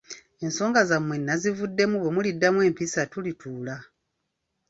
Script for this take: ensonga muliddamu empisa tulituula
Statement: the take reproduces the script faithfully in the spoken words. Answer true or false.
false